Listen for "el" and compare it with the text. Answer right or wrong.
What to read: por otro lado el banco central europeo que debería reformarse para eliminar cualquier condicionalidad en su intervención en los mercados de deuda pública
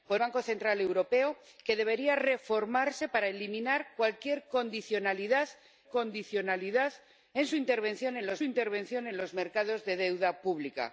wrong